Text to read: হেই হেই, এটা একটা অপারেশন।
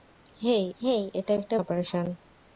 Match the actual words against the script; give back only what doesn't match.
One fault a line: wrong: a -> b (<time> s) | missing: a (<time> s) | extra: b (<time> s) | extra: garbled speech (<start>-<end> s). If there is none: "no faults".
no faults